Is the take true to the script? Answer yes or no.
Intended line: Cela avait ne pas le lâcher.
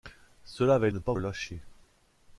yes